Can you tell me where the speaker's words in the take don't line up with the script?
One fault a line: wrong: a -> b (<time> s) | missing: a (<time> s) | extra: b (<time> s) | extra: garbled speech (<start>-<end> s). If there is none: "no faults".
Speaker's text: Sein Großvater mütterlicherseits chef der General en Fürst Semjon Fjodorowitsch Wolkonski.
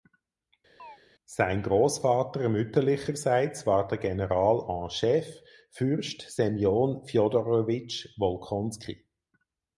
wrong: chef -> war (3.6 s)
extra: chef (4.9 s)